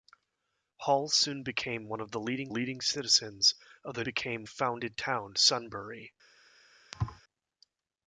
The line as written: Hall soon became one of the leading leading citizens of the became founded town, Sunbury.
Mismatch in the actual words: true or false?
false